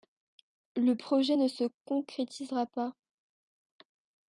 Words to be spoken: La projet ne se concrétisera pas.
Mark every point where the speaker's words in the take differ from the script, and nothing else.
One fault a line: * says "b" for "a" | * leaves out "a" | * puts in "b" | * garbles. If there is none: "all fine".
* says "Le" for "La"